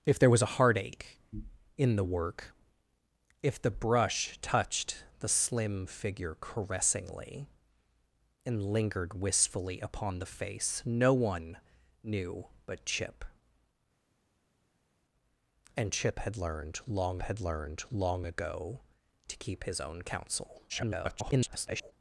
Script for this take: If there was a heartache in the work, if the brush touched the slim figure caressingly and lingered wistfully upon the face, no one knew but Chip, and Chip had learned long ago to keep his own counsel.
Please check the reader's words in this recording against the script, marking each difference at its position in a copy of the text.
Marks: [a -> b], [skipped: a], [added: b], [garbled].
If there was a heartache in the work, if the brush touched the slim figure caressingly and lingered wistfully upon the face, no one knew but Chip, and Chip had learned long [added: had learned long] ago to keep his own counsel. [garbled]